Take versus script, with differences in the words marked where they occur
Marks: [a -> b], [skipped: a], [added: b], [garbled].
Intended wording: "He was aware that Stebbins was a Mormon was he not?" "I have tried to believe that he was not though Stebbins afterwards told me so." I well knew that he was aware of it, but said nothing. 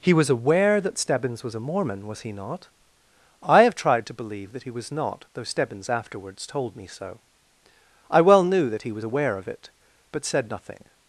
"He was aware that Stebbins was a Mormon was he not?" "I have tried to believe that he was not though Stebbins afterwards told me so." I well knew that he was aware of it, but said nothing.